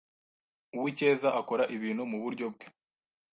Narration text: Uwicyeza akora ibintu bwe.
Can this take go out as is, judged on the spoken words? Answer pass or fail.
fail